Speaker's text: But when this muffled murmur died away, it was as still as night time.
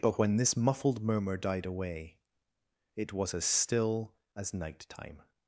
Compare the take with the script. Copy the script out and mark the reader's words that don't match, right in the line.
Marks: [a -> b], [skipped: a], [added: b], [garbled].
But when this muffled murmur died away, it was as still as night time.